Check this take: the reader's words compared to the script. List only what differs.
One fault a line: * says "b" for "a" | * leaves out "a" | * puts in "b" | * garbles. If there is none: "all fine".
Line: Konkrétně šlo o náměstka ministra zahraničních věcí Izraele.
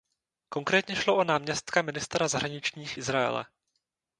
* leaves out "věcí"